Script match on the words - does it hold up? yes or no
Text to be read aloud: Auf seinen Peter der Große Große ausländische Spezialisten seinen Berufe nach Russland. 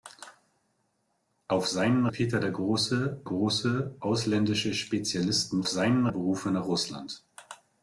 yes